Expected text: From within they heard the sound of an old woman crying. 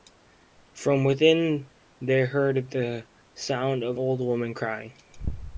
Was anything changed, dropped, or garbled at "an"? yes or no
yes